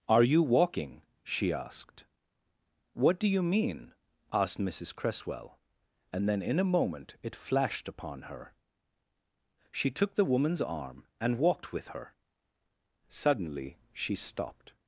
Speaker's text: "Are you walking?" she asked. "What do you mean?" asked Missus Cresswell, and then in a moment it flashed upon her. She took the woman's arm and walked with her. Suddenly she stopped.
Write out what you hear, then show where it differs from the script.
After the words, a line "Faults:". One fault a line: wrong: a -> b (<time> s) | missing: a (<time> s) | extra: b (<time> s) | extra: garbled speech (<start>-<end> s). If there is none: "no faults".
"Are you walking?" she asked. "What do you mean?" asked Missus Cresswell, and then in a moment it flashed upon her. She took the woman's arm and walked with her. Suddenly she stopped.
Faults:
no faults